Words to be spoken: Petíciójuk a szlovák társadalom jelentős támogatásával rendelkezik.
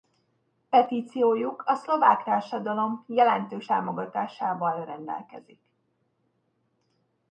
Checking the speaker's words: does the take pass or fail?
pass